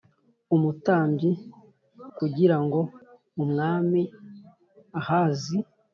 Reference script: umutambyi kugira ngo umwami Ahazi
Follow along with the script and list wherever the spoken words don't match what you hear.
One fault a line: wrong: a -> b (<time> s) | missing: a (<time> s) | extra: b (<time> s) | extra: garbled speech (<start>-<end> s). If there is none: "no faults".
no faults